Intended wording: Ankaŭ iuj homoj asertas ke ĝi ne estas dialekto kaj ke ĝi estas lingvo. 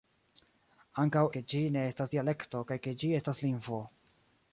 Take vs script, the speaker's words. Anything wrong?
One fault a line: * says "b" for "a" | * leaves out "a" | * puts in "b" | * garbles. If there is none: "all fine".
* leaves out "iuj homoj asertas"